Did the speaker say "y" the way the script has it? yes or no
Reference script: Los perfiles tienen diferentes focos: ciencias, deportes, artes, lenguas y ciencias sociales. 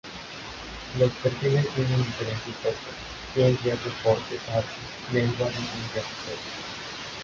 yes